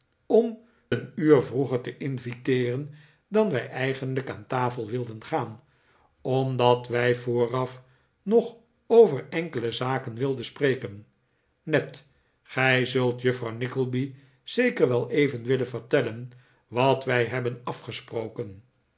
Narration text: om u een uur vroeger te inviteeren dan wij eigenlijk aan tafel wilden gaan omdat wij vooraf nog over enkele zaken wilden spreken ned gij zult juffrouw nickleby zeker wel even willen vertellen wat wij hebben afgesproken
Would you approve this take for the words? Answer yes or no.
no